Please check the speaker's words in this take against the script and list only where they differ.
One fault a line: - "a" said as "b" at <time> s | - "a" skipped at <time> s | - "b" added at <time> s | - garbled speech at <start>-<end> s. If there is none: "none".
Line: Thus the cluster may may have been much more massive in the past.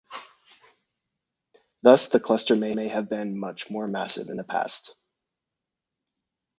none